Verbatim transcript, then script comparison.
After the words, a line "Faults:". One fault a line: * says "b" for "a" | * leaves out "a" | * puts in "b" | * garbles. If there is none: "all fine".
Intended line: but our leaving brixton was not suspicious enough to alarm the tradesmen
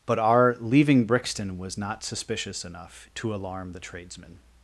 but our leaving brixton was not suspicious enough to alarm the tradesmen
Faults:
all fine